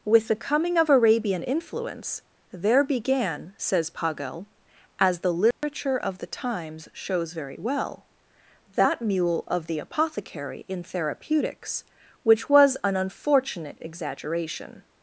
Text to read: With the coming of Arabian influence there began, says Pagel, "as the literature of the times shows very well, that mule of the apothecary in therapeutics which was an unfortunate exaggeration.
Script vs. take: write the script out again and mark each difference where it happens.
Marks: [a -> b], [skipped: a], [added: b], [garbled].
With the coming of Arabian influence there began, says Pagel, "as the literature of the times shows very well, that mule of the apothecary in therapeutics which was an unfortunate exaggeration.